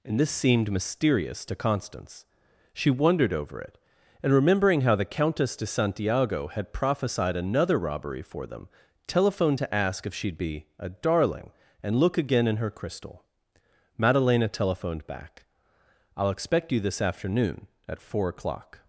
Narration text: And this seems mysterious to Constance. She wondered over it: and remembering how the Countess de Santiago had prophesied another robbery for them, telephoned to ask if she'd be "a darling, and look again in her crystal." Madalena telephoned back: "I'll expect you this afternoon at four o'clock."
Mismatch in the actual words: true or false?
true